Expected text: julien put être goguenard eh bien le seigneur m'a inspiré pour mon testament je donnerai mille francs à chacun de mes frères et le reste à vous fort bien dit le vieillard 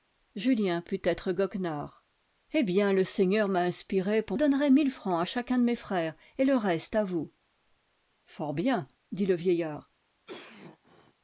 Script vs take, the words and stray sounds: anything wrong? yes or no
yes